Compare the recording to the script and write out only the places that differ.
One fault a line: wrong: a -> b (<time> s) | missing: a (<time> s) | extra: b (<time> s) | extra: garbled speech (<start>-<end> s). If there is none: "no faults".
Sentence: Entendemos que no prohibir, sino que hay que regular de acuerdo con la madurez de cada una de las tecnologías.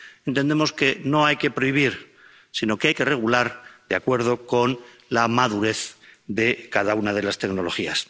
extra: hay que (1.2 s)